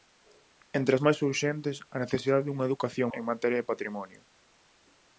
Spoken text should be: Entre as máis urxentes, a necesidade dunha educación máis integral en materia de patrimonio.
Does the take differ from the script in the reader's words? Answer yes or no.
yes